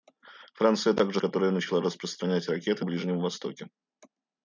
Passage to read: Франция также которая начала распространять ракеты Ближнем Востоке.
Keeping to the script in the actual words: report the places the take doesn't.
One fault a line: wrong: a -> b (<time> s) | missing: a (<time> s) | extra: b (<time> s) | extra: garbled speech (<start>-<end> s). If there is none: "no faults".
no faults